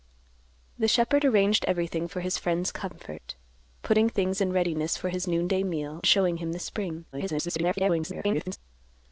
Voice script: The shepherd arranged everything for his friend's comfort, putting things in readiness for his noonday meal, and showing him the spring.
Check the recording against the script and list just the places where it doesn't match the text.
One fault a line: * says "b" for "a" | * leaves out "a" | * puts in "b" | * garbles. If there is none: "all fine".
* leaves out "and"
* garbles